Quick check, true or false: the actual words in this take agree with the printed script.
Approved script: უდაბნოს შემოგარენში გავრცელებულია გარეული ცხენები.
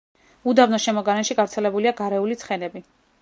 true